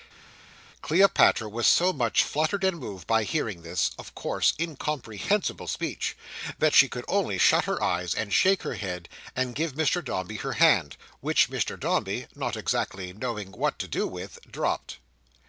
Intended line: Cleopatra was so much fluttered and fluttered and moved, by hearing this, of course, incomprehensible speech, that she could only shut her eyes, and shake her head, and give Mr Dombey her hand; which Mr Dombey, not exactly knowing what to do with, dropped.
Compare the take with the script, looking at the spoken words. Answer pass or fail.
fail